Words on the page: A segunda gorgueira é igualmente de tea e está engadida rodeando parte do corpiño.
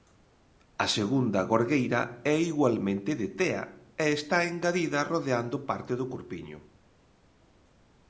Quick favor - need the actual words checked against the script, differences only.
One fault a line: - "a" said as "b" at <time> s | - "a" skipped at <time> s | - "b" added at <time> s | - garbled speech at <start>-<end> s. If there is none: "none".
none